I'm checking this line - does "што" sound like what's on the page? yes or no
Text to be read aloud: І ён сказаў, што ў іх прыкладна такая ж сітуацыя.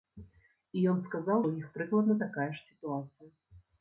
no